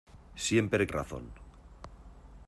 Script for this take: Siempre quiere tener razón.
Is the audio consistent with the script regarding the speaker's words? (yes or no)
no